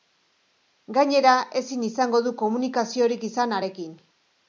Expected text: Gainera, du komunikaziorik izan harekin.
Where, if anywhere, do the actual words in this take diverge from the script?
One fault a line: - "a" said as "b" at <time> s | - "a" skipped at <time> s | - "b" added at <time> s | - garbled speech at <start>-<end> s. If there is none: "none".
- "ezin izango" added at 1.6 s